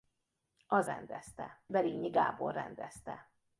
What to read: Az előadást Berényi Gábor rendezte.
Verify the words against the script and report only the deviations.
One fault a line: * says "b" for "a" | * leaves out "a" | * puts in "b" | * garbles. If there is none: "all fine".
* says "rendezte" for "előadást"